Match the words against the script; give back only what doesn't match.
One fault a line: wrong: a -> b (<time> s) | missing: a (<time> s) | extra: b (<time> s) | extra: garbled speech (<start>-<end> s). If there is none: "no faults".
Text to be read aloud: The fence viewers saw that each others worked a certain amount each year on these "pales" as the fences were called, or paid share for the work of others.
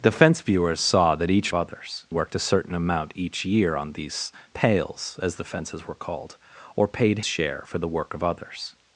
no faults